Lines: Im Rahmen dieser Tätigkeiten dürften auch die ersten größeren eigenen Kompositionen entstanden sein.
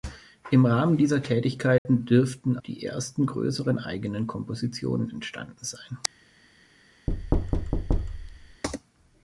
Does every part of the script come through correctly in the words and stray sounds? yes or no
no